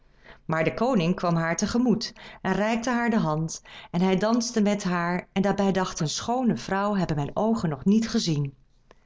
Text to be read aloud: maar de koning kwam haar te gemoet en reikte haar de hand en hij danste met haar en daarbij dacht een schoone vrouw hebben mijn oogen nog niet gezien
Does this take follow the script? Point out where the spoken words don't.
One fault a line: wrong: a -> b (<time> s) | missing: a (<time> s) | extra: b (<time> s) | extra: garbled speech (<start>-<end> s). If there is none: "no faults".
no faults